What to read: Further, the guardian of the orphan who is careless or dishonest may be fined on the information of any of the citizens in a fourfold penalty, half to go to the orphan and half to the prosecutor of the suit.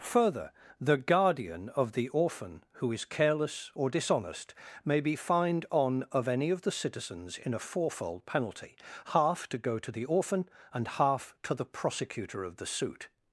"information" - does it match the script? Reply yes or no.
no